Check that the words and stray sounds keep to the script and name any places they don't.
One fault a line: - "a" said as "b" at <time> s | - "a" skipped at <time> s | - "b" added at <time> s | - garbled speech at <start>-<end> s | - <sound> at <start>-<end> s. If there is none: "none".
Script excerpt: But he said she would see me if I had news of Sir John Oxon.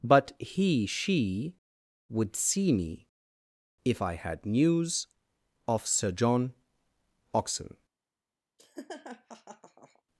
- "said" skipped at 0.9 s
- laugh at 8.6-10.0 s